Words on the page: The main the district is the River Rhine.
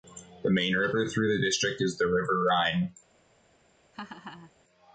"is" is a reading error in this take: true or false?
false